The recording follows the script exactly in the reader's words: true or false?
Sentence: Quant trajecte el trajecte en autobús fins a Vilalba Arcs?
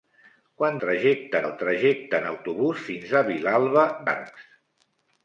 true